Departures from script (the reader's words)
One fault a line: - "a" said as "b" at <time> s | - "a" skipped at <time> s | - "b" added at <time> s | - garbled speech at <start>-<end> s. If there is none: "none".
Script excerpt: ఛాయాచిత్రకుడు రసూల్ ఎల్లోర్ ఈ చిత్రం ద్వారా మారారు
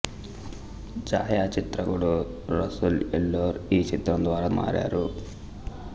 none